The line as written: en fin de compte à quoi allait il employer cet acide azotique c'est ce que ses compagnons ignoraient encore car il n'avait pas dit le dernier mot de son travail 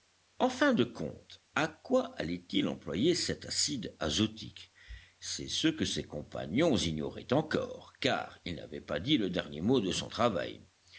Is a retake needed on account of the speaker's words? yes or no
no